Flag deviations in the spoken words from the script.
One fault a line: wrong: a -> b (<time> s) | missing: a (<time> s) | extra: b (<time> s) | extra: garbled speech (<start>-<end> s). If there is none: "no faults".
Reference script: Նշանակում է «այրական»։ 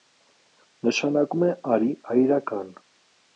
extra: արի (1.8 s)